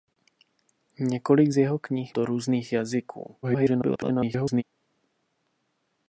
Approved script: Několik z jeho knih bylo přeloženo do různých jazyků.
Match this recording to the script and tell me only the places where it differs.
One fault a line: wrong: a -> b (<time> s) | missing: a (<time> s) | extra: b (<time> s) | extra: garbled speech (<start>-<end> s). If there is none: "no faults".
missing: bylo přeloženo (2.1 s)
extra: garbled speech (3.4-4.6 s)